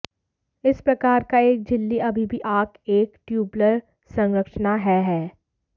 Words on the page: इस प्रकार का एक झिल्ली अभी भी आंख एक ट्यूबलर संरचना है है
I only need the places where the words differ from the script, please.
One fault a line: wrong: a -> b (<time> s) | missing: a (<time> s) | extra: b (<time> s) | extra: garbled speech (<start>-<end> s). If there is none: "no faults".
no faults